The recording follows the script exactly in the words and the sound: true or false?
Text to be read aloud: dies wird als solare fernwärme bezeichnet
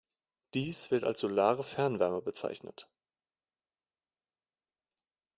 true